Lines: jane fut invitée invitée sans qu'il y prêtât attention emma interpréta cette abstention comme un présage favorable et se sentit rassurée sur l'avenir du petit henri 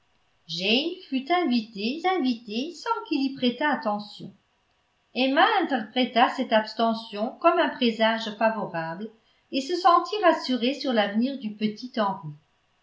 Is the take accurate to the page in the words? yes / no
yes